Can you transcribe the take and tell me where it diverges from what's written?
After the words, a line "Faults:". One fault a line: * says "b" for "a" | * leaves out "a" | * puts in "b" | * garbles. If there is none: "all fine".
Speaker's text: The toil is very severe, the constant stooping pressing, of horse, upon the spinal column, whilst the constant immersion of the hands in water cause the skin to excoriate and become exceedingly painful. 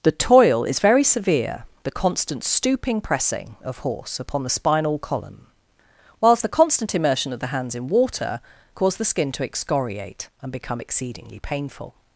The toil is very severe, the constant stooping pressing, of horse, upon the spinal column, whilst the constant immersion of the hands in water cause the skin to excoriate and become exceedingly painful.
Faults:
all fine